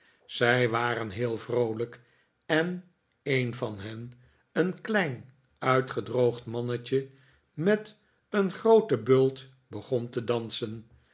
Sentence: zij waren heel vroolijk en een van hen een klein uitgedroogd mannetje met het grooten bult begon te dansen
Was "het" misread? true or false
true